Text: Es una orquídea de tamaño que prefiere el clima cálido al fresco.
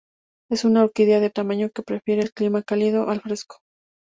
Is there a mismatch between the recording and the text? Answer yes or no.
no